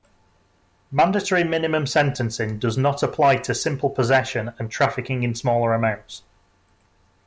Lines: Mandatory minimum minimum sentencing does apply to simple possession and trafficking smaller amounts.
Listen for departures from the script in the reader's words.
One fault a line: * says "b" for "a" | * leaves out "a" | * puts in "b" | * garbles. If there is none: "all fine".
* leaves out "minimum"
* puts in "not"
* puts in "in"